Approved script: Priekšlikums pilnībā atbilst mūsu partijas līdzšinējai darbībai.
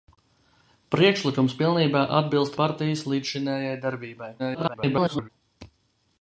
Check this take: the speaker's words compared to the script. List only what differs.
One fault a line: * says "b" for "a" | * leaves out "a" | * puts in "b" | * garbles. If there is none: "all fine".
* leaves out "mūsu"
* garbles